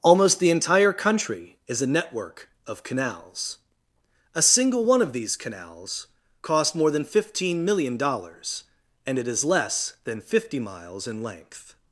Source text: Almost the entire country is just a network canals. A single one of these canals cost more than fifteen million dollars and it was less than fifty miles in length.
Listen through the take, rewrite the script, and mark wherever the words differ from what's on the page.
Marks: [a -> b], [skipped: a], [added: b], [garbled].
Almost the entire country is [skipped: just] a network [added: of] canals. A single one of these canals cost more than fifteen million dollars and it [was -> is] less than fifty miles in length.